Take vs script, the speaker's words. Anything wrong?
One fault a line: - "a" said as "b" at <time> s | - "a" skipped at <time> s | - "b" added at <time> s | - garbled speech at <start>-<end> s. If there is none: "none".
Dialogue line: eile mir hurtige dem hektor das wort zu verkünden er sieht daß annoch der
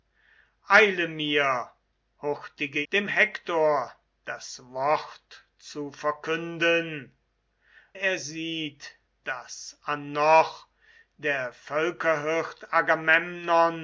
none